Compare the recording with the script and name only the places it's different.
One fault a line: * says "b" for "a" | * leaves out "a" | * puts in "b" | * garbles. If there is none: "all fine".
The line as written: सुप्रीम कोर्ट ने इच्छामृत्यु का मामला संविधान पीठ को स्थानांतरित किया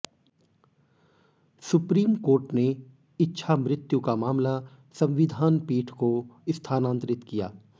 all fine